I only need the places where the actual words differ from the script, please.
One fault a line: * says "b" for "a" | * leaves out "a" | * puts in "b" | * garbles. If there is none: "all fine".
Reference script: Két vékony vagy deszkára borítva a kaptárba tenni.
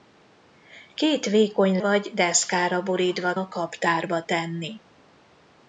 all fine